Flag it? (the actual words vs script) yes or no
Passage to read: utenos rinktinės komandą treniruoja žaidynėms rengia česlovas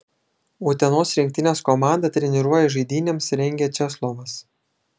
no